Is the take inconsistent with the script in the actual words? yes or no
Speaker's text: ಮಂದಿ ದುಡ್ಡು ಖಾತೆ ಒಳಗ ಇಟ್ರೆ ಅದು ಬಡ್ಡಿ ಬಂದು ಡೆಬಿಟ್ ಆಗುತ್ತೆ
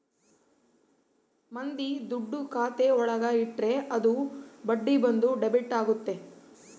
no